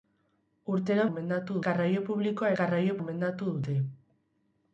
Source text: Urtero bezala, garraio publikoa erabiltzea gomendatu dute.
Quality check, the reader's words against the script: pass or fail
fail